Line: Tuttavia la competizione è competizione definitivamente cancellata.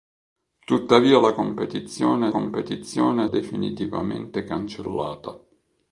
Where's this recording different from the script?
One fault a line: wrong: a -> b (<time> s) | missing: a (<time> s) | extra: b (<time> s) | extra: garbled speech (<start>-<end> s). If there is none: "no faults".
no faults